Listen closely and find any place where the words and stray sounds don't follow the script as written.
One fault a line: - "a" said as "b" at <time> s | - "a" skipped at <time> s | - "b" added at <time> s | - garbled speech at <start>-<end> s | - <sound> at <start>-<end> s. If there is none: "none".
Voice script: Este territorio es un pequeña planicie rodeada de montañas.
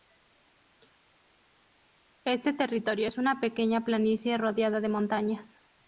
- "un" said as "una" at 3.2 s